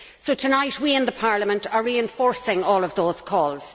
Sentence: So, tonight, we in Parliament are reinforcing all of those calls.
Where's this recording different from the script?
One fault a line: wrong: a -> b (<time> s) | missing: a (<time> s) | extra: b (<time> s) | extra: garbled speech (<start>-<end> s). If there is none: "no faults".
no faults